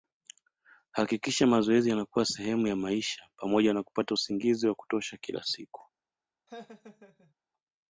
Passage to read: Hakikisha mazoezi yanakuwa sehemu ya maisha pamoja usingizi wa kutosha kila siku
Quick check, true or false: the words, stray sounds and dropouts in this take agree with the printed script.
false